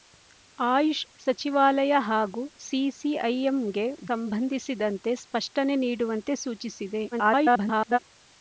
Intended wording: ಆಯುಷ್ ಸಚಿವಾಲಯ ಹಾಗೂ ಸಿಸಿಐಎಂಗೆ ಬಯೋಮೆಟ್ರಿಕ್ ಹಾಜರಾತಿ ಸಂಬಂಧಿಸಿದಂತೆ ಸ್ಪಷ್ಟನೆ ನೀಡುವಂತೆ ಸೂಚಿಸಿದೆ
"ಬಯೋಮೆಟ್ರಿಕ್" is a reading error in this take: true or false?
true